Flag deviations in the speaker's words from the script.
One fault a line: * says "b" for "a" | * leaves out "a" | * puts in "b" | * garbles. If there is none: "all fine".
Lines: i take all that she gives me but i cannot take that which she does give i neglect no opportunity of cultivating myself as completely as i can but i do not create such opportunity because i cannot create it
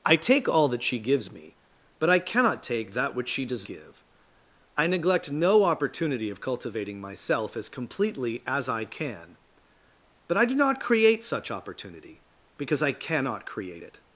all fine